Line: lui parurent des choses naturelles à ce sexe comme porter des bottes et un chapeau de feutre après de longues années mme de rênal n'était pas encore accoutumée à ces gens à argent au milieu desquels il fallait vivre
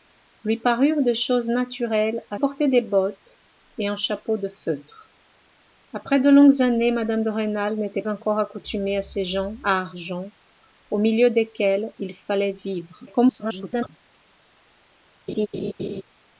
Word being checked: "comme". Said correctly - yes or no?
no